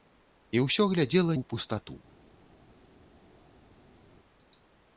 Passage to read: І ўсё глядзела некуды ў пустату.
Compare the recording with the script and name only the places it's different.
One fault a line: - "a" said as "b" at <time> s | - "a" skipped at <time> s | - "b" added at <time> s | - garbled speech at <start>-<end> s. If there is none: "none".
- "некуды" skipped at 1.4 s